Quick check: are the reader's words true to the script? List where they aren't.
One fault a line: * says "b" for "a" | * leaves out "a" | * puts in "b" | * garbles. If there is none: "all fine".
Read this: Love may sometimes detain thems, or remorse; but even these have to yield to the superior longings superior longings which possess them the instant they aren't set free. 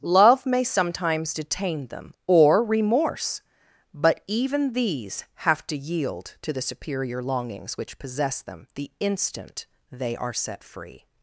* says "them" for "thems"
* leaves out "superior longings"
* says "are" for "aren't"